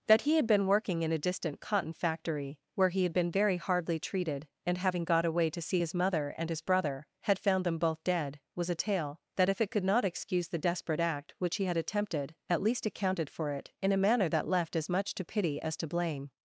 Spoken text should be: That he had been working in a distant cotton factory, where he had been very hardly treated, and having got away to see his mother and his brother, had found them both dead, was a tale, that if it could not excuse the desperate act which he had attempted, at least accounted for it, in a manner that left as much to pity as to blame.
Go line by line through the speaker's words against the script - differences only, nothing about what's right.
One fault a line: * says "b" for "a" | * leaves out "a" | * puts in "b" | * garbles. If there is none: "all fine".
all fine